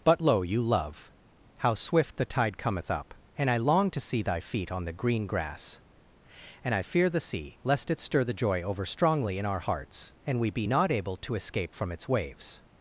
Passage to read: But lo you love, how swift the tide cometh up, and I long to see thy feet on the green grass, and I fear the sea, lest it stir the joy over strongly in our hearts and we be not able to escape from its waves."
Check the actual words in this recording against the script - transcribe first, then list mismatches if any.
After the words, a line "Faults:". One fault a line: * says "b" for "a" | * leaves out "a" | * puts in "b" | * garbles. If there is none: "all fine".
But lo you love, how swift the tide cometh up, and I long to see thy feet on the green grass, and I fear the sea, lest it stir the joy over strongly in our hearts and we be not able to escape from its waves."
Faults:
all fine